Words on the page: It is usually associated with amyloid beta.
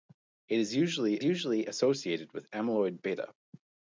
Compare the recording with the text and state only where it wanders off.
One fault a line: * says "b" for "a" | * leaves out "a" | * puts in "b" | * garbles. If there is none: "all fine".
* puts in "usually"